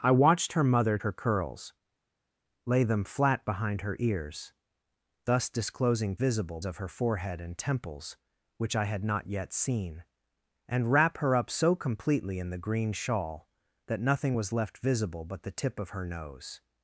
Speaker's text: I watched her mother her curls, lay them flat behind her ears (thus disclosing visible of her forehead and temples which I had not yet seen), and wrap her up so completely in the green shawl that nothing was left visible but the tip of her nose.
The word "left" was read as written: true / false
true